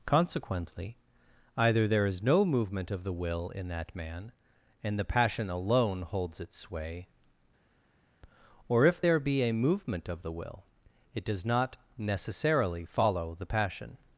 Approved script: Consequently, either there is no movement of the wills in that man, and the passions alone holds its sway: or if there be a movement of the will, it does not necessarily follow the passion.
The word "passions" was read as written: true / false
false